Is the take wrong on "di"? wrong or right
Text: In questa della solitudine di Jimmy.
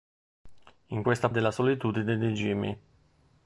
right